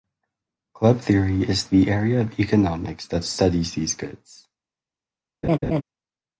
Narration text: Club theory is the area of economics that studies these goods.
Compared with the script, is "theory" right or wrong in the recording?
right